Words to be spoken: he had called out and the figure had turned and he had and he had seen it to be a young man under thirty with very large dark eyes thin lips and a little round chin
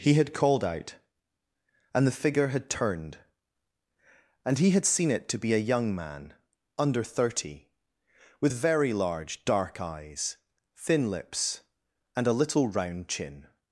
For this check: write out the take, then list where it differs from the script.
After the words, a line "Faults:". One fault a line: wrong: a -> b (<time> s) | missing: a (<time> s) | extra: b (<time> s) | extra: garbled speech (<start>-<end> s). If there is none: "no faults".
he had called out and the figure had turned and he had seen it to be a young man under thirty with very large dark eyes thin lips and a little round chin
Faults:
missing: and he had (4.8 s)